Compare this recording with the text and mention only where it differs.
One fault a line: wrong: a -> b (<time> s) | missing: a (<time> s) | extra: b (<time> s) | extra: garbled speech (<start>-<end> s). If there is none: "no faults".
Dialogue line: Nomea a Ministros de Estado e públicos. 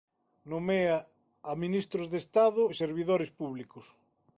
extra: servidores (2.8 s)